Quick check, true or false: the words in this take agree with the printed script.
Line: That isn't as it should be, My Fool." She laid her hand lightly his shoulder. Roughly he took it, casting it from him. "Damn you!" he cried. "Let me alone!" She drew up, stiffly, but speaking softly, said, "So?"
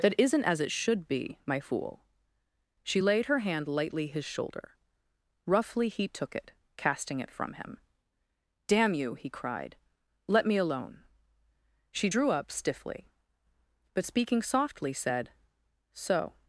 true